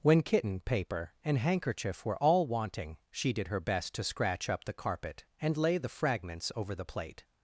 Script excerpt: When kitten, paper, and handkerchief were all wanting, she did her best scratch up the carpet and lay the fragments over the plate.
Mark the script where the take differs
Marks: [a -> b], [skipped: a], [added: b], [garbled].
When kitten, paper, and handkerchief were all wanting, she did her best [added: to] scratch up the carpet and lay the fragments over the plate.